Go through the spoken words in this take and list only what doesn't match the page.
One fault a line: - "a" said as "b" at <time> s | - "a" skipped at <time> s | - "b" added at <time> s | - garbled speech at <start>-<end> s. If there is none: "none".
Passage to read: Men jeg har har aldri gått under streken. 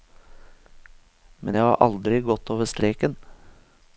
- "har" skipped at 1.8 s
- "under" said as "over" at 2.5 s